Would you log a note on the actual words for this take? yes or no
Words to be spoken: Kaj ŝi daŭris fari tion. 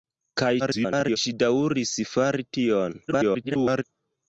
yes